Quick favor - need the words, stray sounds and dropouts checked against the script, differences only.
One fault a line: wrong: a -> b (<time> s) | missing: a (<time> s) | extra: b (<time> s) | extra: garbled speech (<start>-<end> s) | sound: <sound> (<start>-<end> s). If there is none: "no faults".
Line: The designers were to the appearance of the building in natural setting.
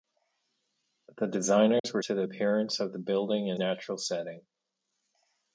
sound: dropout (1.8-1.8 s)